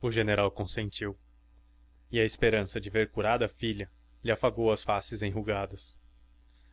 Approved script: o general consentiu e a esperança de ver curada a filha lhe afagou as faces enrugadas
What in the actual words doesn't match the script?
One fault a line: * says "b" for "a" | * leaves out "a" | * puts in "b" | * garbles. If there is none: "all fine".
all fine